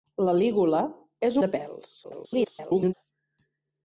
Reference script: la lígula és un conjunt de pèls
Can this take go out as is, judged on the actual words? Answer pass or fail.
fail